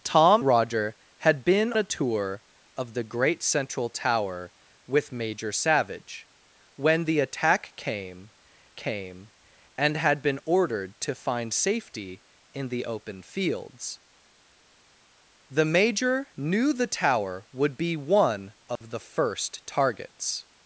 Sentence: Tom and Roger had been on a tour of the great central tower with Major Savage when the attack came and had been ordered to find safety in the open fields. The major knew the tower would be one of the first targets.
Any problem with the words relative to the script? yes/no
yes